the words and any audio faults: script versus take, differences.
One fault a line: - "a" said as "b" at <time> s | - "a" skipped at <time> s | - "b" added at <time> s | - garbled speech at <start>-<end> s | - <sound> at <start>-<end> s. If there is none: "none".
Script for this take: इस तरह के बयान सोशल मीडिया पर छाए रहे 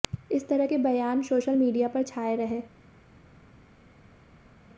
none